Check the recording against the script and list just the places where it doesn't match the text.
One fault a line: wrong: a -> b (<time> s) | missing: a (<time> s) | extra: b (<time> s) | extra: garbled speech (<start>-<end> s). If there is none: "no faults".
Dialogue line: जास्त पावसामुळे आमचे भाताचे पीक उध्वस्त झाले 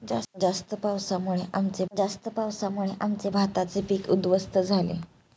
extra: जास्त पावसामुळे आमचे (1.9 s)